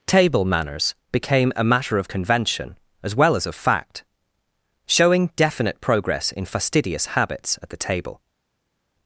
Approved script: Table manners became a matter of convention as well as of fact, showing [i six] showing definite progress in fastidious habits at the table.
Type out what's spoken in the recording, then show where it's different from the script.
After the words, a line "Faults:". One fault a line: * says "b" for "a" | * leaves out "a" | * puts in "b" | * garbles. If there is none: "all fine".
Table manners became a matter of convention as well as of fact, showing definite progress in fastidious habits at the table.
Faults:
* leaves out "i six showing"